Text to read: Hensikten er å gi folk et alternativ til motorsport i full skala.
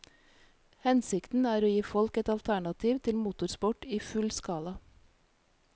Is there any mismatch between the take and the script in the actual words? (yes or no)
no